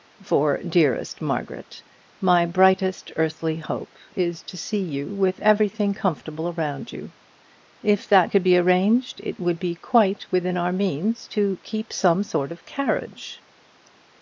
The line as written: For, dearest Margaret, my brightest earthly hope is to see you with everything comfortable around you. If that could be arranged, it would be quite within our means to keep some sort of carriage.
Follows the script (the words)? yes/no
yes